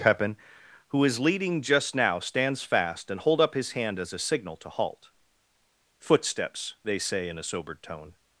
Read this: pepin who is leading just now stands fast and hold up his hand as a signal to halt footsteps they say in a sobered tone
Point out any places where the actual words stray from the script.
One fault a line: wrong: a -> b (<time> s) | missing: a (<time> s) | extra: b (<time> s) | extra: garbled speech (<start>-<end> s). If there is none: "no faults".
no faults